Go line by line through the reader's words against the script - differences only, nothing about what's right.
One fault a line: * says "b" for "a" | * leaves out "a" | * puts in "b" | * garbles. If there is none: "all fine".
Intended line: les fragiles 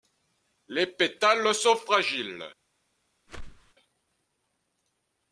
* puts in "pétales sont"